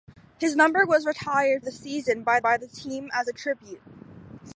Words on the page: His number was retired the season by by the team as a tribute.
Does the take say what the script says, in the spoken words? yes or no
yes